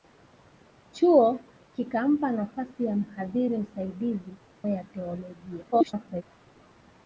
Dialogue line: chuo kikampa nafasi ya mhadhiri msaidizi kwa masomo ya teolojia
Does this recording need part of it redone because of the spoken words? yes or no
yes